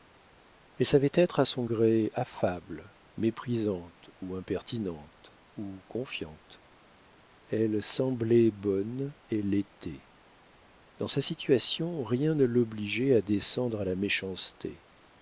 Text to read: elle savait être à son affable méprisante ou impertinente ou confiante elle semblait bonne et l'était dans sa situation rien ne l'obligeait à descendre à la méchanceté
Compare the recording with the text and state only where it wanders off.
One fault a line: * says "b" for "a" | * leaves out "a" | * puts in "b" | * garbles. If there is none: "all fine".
* puts in "gré"